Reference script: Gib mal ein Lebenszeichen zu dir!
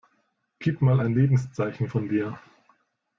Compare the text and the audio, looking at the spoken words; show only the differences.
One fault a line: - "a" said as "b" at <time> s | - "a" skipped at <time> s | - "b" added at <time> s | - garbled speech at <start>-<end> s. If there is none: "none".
- "zu" said as "von" at 1.8 s